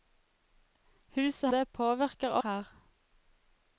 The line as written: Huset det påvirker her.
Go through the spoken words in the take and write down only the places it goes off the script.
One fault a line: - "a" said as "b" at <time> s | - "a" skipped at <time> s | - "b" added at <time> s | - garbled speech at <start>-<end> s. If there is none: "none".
none